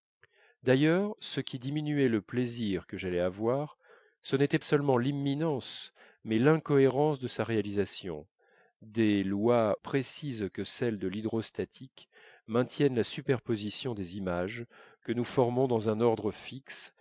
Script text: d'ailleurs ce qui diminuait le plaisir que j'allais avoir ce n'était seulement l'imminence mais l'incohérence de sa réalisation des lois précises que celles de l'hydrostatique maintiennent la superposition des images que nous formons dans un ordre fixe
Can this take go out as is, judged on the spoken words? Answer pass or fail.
pass